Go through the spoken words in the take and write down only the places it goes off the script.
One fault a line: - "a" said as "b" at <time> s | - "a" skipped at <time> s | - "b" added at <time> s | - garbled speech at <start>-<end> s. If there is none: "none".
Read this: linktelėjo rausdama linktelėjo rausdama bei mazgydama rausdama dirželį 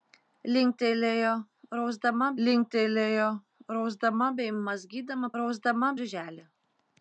none